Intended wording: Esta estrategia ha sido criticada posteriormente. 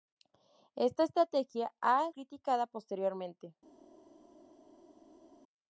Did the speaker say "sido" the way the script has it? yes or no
no